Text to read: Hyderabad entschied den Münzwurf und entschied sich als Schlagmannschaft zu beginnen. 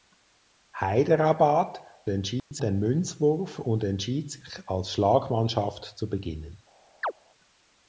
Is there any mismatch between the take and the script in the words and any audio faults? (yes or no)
yes